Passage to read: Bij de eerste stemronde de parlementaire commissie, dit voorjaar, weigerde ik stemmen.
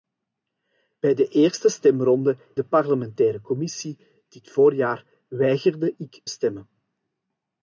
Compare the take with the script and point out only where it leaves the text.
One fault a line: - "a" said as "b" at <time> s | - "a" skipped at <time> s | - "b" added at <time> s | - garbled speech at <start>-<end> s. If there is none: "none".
none